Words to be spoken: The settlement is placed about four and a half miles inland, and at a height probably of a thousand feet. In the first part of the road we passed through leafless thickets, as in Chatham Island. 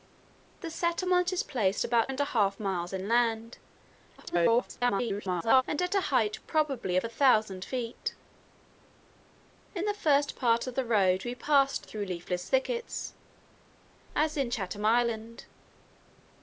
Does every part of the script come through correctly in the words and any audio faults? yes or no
no